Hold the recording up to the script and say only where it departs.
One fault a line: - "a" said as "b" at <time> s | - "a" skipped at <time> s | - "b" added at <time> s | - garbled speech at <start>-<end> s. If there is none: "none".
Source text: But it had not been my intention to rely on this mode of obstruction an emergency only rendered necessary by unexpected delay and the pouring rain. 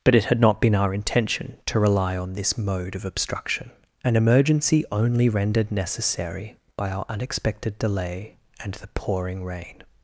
- "my" said as "our" at 0.7 s
- "our" added at 6.9 s